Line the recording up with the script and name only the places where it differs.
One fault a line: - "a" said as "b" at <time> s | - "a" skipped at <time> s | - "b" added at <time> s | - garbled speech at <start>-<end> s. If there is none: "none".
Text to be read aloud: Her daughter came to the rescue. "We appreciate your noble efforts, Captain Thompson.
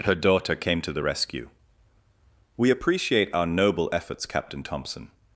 - "your" said as "our" at 3.3 s